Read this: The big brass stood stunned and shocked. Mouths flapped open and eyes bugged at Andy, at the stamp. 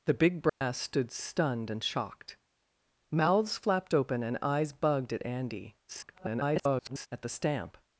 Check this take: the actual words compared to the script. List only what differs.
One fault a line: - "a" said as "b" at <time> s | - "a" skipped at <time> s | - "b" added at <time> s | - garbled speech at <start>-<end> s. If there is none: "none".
- garbled speech at 5.9-7.1 s